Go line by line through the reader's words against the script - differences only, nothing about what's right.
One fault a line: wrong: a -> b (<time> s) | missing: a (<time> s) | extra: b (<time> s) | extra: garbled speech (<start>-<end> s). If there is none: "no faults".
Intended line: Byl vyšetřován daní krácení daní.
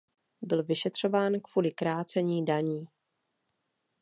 wrong: daní -> kvůli (1.4 s)